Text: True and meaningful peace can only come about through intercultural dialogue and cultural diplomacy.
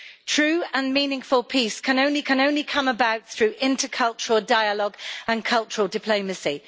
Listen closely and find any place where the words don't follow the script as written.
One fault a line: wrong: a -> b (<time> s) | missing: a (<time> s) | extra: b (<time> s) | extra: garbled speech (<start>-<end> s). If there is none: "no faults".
extra: can only (2.2 s)